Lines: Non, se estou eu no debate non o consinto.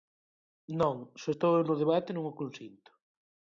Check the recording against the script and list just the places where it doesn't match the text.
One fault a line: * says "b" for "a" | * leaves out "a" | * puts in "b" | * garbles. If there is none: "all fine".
all fine